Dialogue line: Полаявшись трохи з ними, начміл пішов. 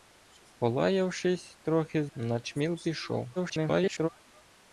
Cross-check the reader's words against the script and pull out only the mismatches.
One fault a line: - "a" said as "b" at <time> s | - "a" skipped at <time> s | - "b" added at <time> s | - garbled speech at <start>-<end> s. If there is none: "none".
- "ними" skipped at 2.1 s
- garbled speech at 3.4-4.1 s